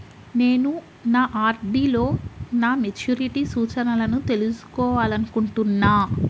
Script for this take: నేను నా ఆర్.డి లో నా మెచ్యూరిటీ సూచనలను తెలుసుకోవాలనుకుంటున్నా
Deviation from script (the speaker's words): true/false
false